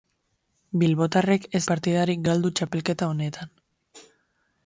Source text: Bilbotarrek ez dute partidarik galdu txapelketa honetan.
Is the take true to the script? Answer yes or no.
no